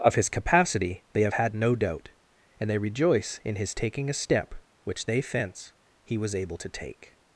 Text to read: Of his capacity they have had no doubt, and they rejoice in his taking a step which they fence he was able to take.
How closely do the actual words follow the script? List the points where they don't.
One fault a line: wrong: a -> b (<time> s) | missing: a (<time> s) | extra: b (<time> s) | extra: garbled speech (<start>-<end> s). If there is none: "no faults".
no faults